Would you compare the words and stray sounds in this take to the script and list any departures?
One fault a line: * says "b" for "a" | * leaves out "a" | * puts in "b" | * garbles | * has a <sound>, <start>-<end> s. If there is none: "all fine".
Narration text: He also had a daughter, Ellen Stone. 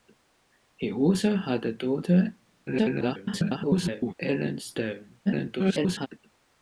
* garbles
* garbles